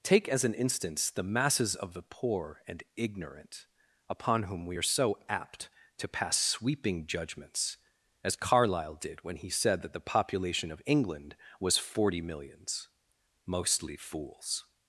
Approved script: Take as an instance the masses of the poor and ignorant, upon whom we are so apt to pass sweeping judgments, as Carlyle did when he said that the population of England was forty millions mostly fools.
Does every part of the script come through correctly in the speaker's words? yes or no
yes